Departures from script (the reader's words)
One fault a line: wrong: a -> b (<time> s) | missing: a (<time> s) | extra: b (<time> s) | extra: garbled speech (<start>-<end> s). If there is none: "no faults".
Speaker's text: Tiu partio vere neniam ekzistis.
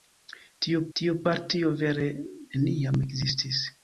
extra: tiu (1.0 s)